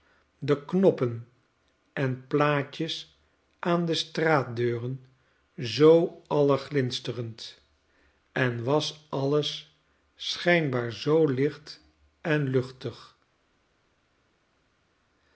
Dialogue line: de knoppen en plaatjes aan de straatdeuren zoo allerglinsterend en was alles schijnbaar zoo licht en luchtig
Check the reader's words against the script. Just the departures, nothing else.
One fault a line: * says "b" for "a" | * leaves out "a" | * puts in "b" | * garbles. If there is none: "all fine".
all fine